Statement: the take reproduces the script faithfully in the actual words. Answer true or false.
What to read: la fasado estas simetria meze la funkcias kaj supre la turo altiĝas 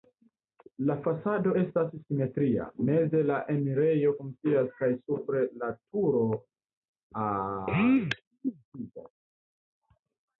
false